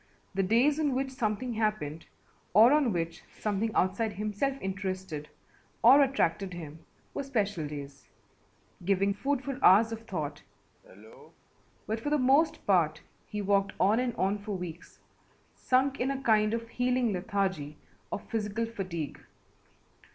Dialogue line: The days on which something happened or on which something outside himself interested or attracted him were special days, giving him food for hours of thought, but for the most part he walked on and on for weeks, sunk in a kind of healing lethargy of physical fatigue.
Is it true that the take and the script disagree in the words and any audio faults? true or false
true